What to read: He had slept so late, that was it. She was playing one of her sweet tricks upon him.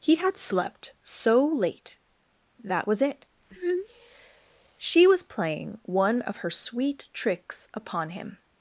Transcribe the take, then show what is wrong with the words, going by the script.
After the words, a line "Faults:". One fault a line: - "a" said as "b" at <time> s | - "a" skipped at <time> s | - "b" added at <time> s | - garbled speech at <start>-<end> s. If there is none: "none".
He had slept so late, that was it. She was playing one of her sweet tricks upon him.
Faults:
none